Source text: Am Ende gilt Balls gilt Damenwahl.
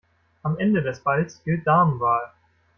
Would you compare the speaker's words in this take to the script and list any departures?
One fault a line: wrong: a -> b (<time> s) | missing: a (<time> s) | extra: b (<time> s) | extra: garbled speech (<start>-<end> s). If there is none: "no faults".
wrong: gilt -> des (0.8 s)